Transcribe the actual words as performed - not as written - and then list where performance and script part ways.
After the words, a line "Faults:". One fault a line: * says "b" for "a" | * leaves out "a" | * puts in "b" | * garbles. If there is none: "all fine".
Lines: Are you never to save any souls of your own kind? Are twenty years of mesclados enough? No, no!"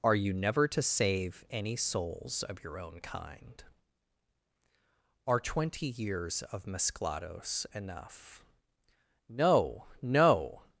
Are you never to save any souls of your own kind? Are twenty years of mesclados enough? No, no!"
Faults:
all fine